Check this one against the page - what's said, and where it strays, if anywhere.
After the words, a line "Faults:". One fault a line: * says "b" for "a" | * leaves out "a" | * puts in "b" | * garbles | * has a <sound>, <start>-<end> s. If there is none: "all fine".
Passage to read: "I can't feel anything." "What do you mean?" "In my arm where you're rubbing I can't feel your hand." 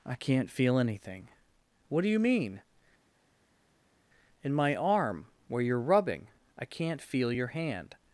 "I can't feel anything." "What do you mean?" "In my arm where you're rubbing I can't feel your hand."
Faults:
all fine